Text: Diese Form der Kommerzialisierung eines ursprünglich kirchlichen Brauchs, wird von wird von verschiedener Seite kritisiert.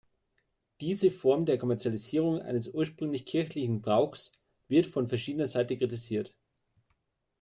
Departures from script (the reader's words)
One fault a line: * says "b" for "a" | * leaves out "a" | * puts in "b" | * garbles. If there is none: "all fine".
* leaves out "wird von"